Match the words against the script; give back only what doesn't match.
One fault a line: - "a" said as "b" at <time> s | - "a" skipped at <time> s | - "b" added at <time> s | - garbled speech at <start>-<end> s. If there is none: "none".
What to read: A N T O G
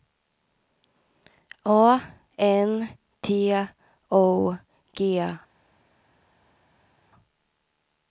none